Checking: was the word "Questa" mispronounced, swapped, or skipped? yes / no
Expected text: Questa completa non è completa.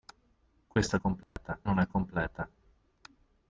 no